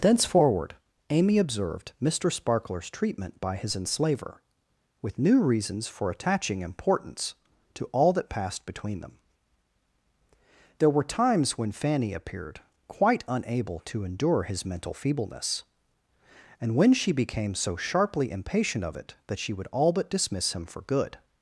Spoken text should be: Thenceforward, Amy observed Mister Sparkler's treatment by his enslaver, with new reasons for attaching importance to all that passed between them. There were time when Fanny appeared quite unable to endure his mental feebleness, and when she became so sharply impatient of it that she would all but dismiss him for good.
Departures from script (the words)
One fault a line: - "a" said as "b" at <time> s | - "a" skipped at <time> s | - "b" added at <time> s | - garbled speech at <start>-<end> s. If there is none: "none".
- "time" said as "times" at 11.2 s